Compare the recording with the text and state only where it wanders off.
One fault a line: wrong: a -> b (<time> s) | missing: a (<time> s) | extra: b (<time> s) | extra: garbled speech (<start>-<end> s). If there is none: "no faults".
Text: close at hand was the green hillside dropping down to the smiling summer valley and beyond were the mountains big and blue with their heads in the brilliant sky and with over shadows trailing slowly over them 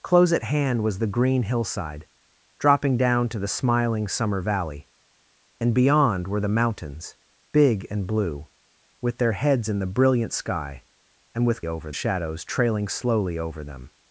no faults